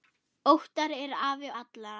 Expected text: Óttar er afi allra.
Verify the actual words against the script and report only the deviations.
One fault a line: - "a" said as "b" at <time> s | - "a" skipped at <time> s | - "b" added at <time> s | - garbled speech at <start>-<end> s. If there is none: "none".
none